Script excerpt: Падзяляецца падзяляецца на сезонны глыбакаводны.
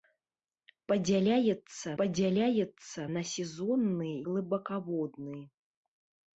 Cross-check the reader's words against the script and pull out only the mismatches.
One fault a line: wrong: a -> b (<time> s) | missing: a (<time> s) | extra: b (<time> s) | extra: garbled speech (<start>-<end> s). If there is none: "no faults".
no faults